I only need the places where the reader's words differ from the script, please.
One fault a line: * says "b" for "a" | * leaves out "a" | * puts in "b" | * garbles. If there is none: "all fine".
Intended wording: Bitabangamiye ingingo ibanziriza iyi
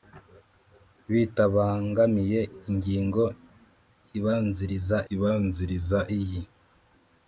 * puts in "ibanziriza"